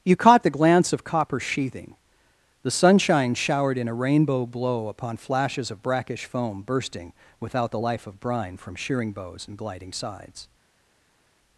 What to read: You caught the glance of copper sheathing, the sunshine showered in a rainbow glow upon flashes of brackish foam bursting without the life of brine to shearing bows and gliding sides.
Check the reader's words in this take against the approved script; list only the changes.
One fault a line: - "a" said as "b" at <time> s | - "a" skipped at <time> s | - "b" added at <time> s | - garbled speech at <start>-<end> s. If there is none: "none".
- "to" said as "from" at 8.6 s